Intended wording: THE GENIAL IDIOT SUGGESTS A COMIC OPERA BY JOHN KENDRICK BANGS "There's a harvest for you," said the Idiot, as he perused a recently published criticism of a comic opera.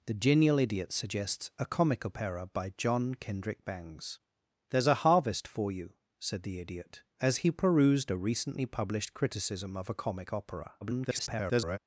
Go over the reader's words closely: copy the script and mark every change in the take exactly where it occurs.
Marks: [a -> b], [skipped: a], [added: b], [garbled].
THE GENIAL IDIOT SUGGESTS A COMIC OPERA BY JOHN KENDRICK BANGS "There's a harvest for you," said the Idiot, as he perused a recently published criticism of a comic opera. [garbled]